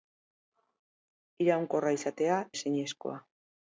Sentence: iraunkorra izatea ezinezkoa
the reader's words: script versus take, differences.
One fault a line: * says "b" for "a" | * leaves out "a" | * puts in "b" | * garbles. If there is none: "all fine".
all fine